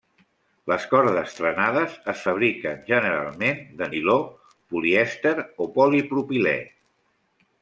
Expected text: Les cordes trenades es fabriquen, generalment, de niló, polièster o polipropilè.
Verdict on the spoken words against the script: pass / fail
pass